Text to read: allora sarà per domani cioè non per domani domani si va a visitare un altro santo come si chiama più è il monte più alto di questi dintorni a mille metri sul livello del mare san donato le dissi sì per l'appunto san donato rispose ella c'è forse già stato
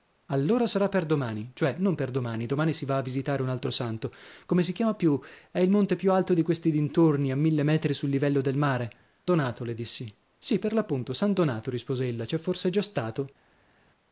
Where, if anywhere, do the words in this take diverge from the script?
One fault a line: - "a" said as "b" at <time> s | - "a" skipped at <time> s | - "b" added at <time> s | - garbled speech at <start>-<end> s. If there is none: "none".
- "san" skipped at 8.9 s